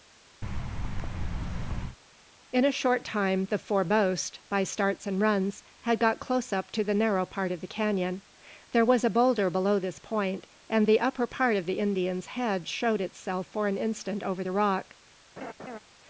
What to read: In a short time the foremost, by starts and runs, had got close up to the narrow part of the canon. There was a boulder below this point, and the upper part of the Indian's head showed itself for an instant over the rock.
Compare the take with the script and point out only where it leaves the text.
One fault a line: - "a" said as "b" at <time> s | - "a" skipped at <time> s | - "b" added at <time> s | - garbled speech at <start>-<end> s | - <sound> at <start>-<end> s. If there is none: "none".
- thud at 0.4-2.0 s
- laugh at 15.4-15.8 s